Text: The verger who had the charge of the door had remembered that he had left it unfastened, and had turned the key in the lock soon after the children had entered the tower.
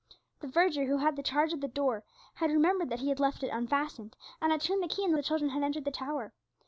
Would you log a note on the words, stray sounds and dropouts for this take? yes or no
yes